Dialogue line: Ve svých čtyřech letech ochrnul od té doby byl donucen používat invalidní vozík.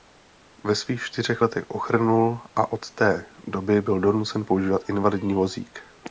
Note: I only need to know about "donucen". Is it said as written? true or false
true